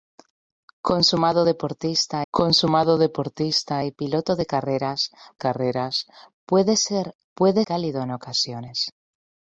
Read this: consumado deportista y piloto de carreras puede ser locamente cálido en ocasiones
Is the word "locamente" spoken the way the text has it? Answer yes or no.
no